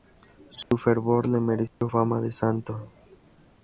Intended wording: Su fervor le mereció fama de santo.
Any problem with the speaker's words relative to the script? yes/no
no